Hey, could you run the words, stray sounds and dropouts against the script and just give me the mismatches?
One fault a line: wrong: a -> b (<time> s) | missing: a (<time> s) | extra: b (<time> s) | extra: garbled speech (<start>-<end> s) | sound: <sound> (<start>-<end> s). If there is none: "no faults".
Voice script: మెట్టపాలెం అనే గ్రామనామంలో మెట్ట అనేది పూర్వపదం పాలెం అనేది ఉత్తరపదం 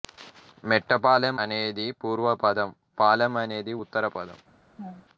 missing: అనే గ్రామనామంలో మెట్ట (1.4 s)
sound: laugh (4.8-5.1 s)